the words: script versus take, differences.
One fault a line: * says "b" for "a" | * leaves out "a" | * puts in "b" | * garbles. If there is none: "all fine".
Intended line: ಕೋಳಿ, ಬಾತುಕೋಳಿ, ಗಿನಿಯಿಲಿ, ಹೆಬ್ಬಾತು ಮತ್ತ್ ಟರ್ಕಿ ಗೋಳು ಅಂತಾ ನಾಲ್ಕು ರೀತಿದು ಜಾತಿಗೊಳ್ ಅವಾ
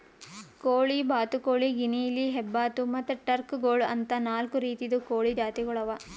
* puts in "ಕೋಳಿ"